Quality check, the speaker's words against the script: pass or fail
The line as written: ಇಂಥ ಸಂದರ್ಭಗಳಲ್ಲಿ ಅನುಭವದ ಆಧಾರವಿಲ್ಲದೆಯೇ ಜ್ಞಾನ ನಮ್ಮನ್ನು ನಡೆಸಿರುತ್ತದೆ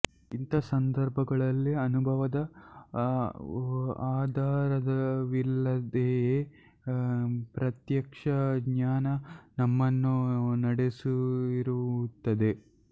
fail